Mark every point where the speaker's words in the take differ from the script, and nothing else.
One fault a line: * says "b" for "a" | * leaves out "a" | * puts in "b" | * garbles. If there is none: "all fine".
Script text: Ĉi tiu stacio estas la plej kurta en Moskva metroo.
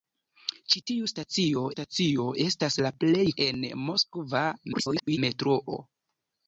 * puts in "stacio"
* leaves out "kurta"
* garbles